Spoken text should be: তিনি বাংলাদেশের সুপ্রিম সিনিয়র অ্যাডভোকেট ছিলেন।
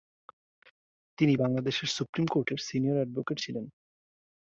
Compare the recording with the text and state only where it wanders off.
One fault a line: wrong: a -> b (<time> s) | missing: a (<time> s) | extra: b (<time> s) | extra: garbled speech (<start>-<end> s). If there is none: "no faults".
extra: কোর্টের (2.2 s)